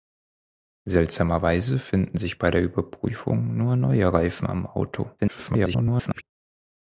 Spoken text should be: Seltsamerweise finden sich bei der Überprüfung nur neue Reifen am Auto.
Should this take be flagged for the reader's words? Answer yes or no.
yes